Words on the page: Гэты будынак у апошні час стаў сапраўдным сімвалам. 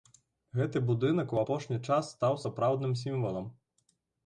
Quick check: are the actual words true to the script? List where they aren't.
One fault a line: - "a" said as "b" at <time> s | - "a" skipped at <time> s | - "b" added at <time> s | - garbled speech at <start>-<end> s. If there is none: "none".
none